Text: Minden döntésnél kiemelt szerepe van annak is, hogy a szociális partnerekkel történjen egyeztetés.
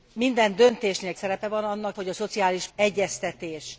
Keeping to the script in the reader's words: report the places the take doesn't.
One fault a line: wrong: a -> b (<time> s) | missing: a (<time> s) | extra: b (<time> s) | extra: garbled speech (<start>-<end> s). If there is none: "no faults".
missing: kiemelt (1.1 s)
missing: is (2.0 s)
missing: partnerekkel történjen (2.7 s)